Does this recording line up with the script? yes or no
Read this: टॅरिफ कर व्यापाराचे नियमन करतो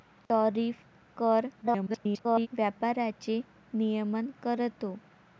no